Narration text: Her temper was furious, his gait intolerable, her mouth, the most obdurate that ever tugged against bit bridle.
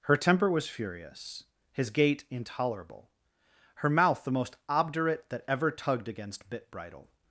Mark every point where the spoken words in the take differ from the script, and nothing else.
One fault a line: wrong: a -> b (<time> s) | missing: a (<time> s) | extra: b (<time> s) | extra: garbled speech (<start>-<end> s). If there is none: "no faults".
no faults